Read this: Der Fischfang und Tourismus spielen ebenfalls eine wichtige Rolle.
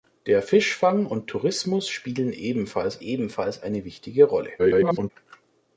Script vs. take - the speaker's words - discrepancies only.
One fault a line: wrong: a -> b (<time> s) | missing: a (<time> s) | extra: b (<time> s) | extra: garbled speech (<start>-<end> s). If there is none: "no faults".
extra: ebenfalls (3.0 s)
extra: garbled speech (4.6-5.1 s)